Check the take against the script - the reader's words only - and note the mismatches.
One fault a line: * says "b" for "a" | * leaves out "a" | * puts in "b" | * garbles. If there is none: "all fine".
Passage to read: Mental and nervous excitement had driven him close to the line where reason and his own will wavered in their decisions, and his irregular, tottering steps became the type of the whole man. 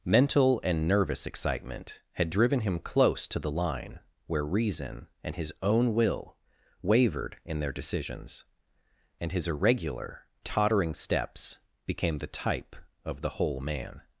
all fine